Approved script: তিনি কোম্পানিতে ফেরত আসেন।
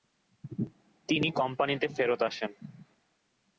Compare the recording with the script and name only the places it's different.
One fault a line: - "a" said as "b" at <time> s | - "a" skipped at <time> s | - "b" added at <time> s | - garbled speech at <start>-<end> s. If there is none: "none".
none